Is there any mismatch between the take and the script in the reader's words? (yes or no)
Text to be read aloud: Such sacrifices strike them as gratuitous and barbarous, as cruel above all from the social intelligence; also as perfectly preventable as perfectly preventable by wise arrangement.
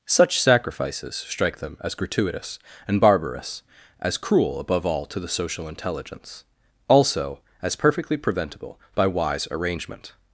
yes